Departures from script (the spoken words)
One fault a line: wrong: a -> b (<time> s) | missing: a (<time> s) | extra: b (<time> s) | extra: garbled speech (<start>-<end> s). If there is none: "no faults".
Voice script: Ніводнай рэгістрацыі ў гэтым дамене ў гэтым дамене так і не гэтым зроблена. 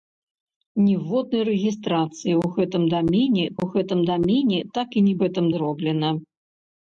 no faults